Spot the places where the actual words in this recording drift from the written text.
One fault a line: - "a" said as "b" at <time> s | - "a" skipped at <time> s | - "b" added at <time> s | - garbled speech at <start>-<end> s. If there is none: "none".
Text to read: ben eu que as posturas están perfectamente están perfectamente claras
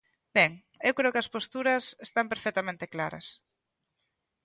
- "creo" added at 1.0 s
- "están perfectamente" skipped at 2.9 s